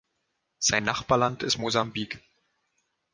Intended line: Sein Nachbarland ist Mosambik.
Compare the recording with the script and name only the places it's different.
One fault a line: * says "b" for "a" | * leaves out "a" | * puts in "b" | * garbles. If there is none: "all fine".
all fine